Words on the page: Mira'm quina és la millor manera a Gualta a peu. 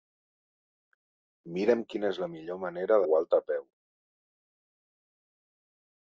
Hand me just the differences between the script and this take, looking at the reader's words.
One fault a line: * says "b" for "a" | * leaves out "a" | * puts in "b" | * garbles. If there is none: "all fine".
all fine